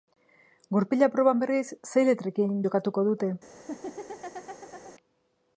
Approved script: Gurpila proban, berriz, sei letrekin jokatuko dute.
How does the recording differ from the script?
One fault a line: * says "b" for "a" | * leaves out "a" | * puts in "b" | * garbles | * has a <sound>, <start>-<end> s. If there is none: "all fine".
* has a laugh, 3.5-5.0 s